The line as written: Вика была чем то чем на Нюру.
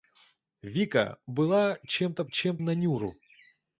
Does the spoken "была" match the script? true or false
true